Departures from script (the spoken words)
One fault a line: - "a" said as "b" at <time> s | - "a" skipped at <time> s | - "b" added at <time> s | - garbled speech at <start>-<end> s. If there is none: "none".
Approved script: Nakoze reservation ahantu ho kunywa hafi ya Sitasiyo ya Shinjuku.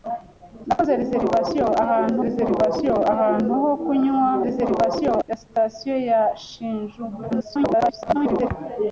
- "reservation ahantu" added at 2.3 s
- "hafi" said as "reservation" at 4.5 s
- garbled speech at 7.3-8.5 s